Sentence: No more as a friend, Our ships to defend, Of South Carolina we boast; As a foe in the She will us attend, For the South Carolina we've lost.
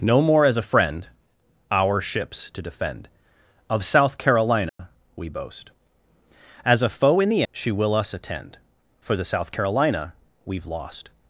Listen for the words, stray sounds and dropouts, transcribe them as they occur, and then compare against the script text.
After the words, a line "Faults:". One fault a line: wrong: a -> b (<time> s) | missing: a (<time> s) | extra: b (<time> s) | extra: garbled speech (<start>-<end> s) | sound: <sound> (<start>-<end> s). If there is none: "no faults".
No more as a friend, Our ships to defend, Of South Carolina we boast; As a foe in the She will us attend, For the South Carolina we've lost.
Faults:
sound: dropout (4.7-4.8 s)